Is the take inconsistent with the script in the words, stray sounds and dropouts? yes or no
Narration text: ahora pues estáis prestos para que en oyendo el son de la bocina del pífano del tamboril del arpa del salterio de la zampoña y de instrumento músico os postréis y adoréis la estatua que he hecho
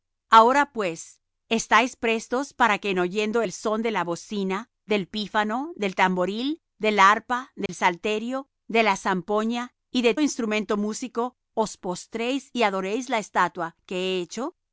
yes